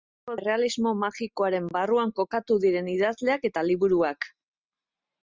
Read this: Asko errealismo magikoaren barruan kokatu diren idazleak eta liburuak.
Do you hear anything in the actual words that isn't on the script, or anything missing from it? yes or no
no